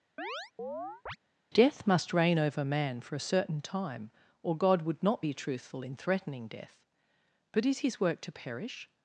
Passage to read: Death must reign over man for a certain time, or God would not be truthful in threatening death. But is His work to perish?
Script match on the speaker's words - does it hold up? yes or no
yes